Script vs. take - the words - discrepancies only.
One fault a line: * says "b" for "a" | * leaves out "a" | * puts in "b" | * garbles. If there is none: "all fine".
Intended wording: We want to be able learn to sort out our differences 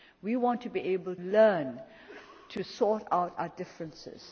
all fine